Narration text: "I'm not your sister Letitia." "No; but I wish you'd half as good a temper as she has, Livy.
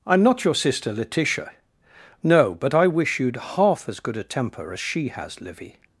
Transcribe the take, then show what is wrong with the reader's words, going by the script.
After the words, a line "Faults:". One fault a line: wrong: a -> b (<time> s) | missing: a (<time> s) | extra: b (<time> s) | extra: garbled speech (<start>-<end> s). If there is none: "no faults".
"I'm not your sister Letitia." "No; but I wish you'd half as good a temper as she has, Livy.
Faults:
no faults